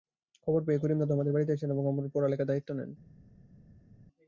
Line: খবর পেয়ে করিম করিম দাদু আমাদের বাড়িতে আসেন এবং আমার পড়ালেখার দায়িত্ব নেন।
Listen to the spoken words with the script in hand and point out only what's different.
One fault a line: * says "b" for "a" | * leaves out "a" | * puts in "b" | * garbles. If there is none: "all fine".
* leaves out "করিম"